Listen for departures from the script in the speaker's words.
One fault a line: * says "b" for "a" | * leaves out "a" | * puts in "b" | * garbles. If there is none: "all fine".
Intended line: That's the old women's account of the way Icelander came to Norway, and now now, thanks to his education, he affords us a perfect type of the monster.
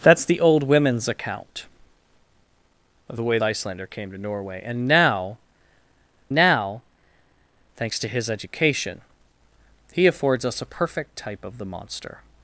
all fine